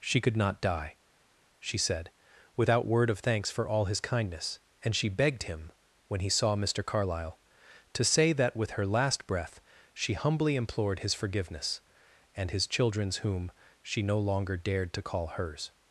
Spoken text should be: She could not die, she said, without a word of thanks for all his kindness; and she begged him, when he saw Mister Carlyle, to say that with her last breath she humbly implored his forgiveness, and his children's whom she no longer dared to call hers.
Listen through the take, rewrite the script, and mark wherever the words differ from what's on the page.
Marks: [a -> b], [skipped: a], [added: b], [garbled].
She could not die, she said, without [skipped: a] word of thanks for all his kindness; and she begged him, when he saw Mister Carlyle, to say that with her last breath she humbly implored his forgiveness, and his children's whom she no longer dared to call hers.